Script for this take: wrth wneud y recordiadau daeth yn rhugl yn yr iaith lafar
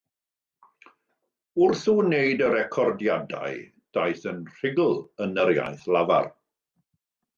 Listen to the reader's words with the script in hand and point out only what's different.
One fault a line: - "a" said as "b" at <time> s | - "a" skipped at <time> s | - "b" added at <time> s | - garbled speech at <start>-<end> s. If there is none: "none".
none